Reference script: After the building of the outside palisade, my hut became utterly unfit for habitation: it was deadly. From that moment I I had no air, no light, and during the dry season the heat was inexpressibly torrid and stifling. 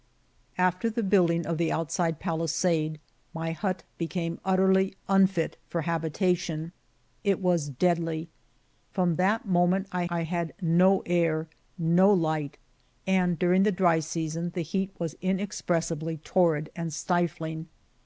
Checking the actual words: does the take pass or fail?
pass